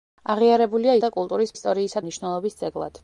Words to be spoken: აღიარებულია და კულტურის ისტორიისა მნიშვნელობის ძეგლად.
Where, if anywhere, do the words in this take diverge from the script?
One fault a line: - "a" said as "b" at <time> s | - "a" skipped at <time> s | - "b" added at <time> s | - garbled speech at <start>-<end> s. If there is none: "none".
none